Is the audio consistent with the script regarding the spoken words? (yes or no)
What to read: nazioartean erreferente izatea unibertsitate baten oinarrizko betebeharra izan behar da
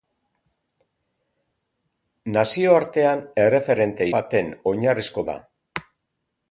no